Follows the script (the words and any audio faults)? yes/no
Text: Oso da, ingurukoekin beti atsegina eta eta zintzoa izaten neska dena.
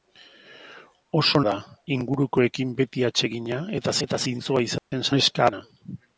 no